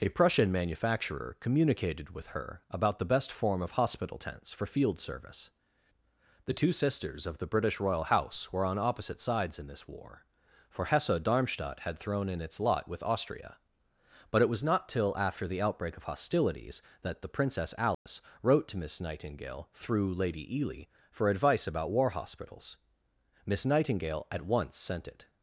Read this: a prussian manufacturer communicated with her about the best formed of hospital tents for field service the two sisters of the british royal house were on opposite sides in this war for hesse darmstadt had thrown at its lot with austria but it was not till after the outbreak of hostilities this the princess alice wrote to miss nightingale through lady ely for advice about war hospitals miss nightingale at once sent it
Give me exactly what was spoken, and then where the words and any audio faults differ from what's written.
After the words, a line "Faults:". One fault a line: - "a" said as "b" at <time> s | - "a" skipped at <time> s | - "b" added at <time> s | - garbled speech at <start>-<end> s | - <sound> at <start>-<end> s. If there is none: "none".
a prussian manufacturer communicated with her about the best form of hospital tents for field service the two sisters of the british royal house were on opposite sides in this war for hesse darmstadt had thrown in its lot with austria but it was not till after the outbreak of hostilities that the princess alice wrote to miss nightingale through lady ely for advice about war hospitals miss nightingale at once sent it
Faults:
- "formed" said as "form" at 3.3 s
- "at" said as "in" at 12.3 s
- "this" said as "that" at 17.0 s
- dropout at 17.9-18.1 s